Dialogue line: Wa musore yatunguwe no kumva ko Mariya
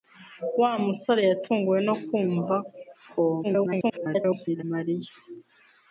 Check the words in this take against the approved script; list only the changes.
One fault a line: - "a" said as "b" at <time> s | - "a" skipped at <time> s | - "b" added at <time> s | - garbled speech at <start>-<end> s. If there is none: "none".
- garbled speech at 3.4-4.6 s